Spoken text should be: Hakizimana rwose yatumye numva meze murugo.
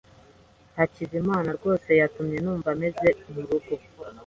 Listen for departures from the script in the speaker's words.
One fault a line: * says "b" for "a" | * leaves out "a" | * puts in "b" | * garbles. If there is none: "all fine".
all fine